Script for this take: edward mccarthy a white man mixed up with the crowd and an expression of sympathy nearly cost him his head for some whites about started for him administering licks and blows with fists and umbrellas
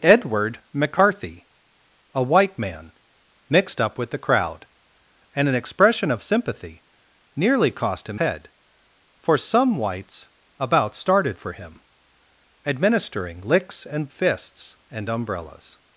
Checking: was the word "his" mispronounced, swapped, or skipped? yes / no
yes